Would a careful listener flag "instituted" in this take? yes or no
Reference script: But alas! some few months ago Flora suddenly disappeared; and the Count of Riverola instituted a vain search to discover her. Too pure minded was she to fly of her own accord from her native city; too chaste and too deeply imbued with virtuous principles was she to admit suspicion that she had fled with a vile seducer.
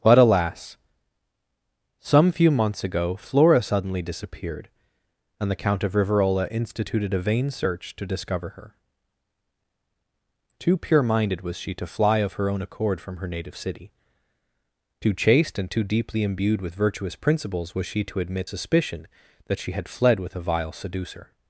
no